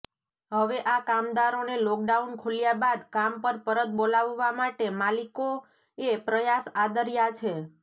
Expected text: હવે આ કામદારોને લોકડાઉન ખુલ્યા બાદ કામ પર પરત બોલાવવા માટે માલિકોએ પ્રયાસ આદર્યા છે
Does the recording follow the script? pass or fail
pass